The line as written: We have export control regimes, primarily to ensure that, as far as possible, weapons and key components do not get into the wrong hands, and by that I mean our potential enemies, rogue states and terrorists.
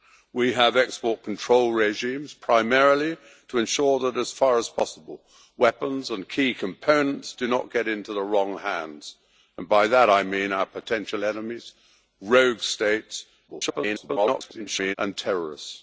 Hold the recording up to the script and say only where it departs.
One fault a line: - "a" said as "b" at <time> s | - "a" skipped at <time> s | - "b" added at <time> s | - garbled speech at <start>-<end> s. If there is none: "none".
- garbled speech at 13.5-15.0 s